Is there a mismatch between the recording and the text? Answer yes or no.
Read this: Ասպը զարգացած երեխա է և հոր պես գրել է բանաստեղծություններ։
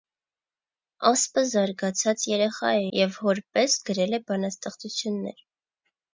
no